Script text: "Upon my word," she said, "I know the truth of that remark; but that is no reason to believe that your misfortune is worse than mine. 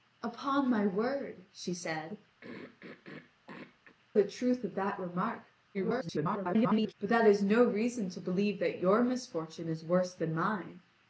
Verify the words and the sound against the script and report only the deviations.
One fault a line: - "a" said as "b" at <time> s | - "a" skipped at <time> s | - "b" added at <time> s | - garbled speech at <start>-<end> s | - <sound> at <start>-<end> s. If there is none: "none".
- "I know" skipped at 2.2 s
- throat clearing at 2.4-4.0 s
- garbled speech at 5.7-6.9 s